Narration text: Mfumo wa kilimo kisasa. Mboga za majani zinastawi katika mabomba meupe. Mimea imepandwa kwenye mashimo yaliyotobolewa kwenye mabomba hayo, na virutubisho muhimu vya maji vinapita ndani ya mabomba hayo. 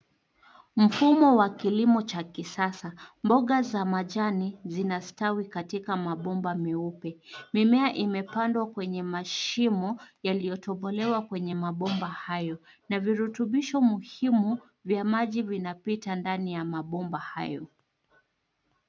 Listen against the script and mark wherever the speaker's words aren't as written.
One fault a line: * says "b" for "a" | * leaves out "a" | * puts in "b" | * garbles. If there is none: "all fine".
* puts in "cha"